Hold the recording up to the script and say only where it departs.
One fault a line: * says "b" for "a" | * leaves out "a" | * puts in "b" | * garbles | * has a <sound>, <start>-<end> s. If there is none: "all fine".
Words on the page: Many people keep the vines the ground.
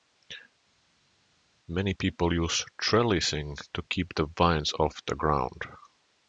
* puts in "use trellising to"
* puts in "off"